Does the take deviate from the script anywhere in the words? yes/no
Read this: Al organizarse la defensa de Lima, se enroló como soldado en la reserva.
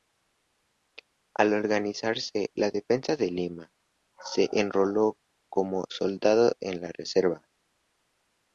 no